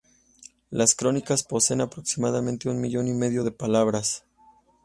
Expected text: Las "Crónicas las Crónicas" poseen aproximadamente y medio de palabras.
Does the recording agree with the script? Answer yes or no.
no